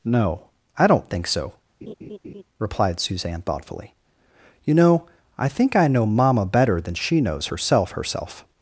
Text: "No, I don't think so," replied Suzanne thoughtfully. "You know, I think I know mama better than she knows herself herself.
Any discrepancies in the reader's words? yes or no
no